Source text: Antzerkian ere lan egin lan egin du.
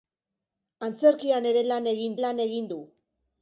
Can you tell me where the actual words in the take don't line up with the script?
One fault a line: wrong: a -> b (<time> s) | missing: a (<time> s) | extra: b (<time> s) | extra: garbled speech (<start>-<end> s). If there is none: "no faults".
no faults